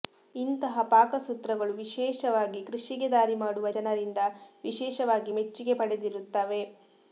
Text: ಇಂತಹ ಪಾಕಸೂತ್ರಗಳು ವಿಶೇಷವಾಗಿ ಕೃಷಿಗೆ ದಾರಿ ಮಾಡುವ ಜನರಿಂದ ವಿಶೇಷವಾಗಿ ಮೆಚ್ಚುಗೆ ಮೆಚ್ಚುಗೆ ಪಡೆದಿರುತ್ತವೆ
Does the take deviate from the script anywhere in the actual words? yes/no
yes